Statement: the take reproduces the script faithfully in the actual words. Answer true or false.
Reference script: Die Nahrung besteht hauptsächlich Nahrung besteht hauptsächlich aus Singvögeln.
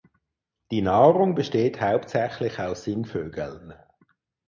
false